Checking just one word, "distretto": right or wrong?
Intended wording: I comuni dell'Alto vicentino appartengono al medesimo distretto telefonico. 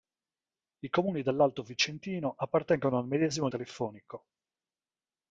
wrong